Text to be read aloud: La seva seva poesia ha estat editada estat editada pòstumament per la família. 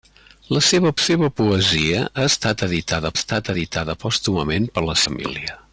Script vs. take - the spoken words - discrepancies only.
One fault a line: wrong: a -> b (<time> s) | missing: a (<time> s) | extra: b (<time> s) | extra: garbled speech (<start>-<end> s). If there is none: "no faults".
no faults